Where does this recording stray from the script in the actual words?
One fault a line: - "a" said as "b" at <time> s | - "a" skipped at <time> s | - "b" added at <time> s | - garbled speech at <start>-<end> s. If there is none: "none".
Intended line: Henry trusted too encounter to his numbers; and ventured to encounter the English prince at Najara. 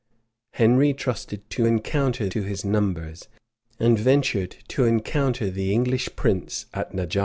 none